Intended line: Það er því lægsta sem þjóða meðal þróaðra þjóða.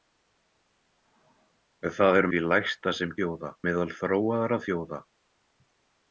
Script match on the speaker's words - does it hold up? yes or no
yes